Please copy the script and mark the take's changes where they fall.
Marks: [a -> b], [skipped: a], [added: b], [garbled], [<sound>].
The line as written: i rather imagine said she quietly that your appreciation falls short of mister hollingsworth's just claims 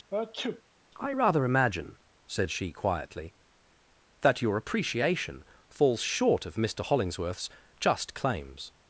[sneeze] i rather imagine said she quietly that your appreciation falls short of mister hollingsworth's just claims